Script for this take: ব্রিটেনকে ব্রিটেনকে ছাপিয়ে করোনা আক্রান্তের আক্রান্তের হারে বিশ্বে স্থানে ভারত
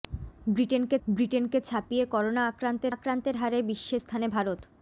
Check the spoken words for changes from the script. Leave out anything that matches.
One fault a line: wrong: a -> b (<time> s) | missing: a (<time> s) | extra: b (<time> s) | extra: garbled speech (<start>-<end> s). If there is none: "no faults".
no faults